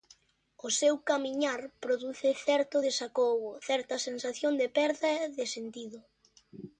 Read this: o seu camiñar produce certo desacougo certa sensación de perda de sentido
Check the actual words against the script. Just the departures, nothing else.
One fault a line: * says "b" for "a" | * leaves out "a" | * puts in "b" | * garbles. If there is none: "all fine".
all fine